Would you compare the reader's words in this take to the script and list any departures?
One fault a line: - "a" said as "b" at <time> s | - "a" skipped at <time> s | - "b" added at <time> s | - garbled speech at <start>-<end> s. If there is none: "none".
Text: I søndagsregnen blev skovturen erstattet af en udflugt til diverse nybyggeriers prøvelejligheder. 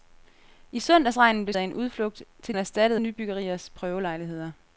- "skovturen erstattet" skipped at 1.5 s
- "diverse" said as "erstattet" at 2.6 s